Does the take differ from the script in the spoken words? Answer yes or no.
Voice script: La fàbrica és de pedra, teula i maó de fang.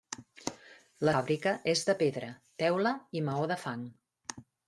no